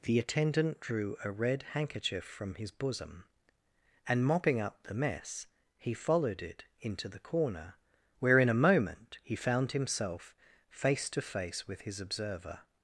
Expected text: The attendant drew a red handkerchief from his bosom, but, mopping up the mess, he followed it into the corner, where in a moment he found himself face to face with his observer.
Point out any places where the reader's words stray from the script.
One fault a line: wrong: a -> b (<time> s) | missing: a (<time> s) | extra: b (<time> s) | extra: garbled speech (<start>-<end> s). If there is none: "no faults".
wrong: but -> and (4.1 s)